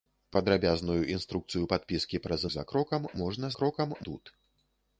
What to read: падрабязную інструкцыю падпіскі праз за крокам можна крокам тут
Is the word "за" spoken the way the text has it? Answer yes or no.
yes